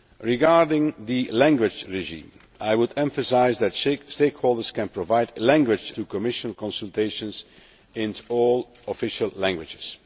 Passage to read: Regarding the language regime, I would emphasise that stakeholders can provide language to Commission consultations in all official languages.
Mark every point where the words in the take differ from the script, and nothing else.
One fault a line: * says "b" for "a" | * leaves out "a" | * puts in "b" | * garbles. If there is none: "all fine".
all fine